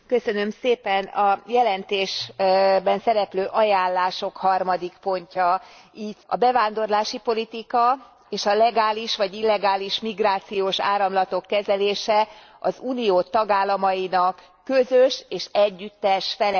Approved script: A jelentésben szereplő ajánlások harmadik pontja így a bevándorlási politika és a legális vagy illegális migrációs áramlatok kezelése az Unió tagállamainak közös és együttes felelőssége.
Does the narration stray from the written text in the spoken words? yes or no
no